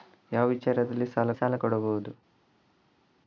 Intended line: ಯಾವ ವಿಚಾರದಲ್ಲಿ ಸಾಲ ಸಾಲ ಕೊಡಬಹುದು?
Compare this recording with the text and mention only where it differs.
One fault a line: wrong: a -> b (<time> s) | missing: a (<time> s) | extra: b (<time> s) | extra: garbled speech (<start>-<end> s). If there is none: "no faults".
no faults